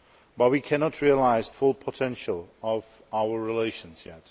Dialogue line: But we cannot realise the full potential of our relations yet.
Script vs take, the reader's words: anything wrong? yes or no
yes